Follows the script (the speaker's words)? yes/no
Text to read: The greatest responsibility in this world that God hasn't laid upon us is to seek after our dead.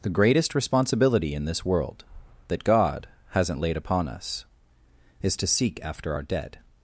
yes